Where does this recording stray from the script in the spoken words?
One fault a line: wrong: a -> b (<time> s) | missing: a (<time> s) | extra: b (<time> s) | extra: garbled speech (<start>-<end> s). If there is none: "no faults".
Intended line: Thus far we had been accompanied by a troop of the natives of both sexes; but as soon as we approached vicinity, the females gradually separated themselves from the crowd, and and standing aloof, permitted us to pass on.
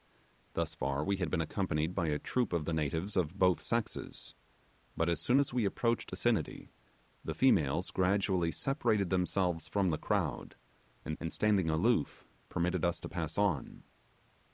no faults